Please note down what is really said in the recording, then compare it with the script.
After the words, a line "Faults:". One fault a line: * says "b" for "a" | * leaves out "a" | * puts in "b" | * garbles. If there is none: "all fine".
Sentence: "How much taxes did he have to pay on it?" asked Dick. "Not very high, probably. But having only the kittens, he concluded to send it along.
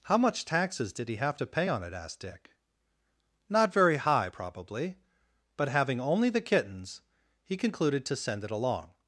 "How much taxes did he have to pay on it?" asked Dick. "Not very high, probably. But having only the kittens, he concluded to send it along.
Faults:
all fine